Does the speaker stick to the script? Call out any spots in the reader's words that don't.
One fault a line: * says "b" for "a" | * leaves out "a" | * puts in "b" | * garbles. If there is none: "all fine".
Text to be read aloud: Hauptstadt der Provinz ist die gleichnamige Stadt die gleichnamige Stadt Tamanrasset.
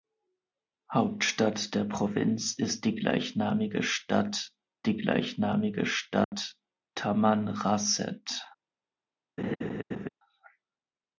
all fine